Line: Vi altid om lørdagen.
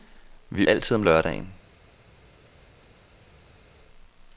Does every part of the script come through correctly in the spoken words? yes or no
yes